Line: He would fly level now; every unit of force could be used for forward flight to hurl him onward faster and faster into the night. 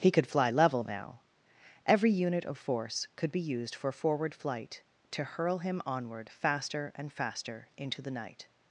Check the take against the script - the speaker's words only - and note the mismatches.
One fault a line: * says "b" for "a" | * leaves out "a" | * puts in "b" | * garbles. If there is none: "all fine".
* says "could" for "would"